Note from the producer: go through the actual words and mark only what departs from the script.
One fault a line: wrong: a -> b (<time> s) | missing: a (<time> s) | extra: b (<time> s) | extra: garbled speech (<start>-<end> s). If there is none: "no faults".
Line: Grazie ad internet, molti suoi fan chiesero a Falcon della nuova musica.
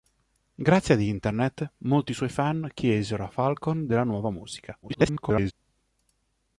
extra: garbled speech (4.8-5.5 s)